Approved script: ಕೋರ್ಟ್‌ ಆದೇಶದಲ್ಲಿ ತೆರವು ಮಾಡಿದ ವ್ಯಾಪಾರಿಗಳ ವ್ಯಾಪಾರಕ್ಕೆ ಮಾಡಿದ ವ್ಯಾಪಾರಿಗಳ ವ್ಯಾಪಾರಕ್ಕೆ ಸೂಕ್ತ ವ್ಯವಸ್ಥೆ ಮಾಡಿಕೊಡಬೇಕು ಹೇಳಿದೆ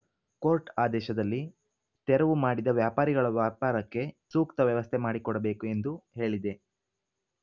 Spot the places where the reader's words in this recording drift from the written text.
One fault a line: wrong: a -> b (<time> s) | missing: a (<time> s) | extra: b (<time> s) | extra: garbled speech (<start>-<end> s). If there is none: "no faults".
missing: ಮಾಡಿದ ವ್ಯಾಪಾರಿಗಳ ವ್ಯಾಪಾರಕ್ಕೆ (4.0 s)
extra: ಎಂದು (5.7 s)